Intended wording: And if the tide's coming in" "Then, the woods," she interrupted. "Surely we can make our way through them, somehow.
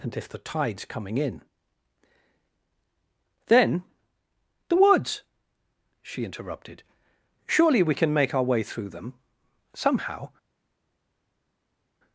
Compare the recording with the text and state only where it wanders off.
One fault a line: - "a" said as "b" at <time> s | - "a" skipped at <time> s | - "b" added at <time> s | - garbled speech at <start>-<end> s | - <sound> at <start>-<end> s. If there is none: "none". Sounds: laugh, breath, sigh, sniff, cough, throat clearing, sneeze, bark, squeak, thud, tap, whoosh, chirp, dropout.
none